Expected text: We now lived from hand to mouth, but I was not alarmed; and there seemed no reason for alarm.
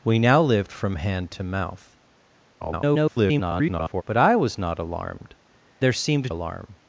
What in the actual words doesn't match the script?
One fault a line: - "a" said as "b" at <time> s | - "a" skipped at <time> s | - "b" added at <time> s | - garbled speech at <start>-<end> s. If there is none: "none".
- garbled speech at 2.6-4.0 s
- "and" skipped at 5.3 s
- "no reason for" skipped at 6.3 s